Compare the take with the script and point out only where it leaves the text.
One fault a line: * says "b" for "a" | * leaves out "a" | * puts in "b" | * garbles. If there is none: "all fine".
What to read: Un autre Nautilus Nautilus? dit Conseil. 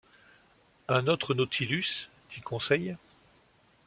* leaves out "Nautilus"